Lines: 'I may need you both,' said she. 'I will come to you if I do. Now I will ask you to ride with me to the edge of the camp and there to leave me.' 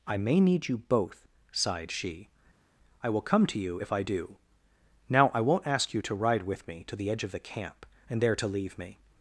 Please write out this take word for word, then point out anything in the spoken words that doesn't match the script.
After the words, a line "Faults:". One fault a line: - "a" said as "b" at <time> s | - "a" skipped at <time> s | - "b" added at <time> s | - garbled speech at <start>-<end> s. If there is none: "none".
'I may need you both,' sighed she. 'I will come to you if I do. Now I won't ask you to ride with me to the edge of the camp and there to leave me.'
Faults:
- "said" said as "sighed" at 1.5 s
- "will" said as "won't" at 5.4 s